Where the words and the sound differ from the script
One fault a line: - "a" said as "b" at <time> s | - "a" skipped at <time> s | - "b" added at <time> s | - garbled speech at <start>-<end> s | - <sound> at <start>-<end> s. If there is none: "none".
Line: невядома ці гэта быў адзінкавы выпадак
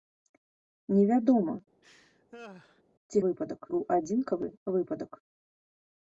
- laugh at 1.8-2.8 s
- "гэта" said as "выпадак" at 3.3 s